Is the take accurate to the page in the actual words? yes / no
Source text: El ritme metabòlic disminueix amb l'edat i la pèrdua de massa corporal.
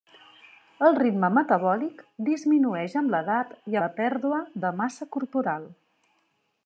yes